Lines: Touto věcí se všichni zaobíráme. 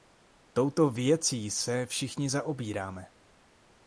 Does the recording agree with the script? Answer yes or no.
yes